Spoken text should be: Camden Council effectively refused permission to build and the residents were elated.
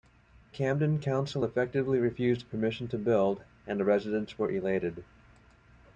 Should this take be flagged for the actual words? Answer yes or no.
no